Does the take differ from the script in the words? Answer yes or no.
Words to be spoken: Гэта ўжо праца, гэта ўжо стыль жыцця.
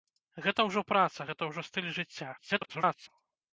yes